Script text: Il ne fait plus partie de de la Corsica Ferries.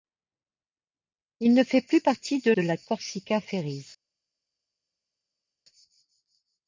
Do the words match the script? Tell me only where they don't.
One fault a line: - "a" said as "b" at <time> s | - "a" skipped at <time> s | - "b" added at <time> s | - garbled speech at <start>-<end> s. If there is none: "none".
none